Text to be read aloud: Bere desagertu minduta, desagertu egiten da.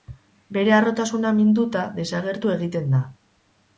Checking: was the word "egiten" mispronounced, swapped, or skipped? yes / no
no